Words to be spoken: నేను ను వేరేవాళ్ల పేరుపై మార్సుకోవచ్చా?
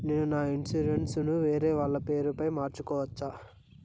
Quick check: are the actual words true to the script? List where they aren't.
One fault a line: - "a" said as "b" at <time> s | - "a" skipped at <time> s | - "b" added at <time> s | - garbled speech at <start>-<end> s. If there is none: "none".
- "నా ఇన్సూరెన్సు" added at 0.2 s